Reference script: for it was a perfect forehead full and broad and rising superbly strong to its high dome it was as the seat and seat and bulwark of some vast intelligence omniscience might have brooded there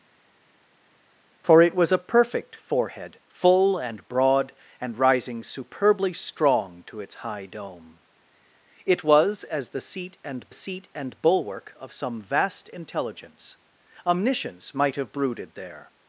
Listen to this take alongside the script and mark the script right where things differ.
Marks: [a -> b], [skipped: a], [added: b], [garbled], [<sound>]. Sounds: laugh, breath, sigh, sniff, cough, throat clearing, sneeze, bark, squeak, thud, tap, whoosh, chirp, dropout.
for it was a perfect forehead full and broad and rising superbly strong to its high dome it was as the seat and seat and bulwark of some vast intelligence omniscience might have brooded there